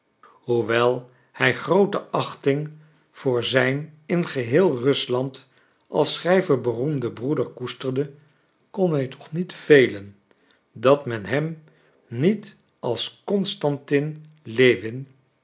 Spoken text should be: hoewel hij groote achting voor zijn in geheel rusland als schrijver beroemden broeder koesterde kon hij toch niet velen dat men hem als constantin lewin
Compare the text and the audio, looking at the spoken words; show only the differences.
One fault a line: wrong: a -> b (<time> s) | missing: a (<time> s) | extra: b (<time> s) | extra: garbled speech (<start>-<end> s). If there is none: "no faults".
extra: niet (12.1 s)